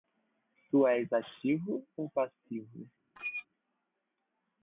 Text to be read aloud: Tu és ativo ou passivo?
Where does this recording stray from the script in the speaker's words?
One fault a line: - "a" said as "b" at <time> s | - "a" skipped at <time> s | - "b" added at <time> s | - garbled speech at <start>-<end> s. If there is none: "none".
none